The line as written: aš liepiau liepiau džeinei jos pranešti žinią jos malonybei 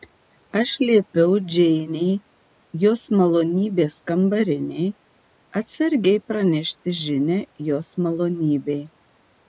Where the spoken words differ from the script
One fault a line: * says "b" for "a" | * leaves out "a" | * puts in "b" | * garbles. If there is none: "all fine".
* leaves out "liepiau"
* puts in "malonybės kambarinei atsargiai"